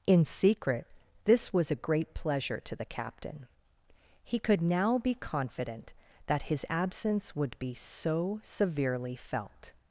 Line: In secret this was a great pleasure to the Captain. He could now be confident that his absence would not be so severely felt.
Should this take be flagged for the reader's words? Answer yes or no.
yes